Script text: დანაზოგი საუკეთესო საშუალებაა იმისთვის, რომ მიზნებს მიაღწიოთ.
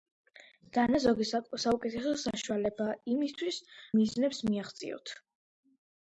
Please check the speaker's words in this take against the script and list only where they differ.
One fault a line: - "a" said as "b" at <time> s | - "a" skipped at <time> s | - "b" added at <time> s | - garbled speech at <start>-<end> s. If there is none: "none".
- "რომ" skipped at 3.6 s